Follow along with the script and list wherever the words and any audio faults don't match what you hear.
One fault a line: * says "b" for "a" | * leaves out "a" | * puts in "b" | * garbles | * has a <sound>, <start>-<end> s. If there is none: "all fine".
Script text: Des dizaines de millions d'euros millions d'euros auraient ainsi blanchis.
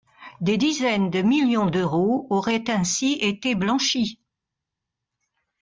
* leaves out "millions d'euros"
* puts in "été"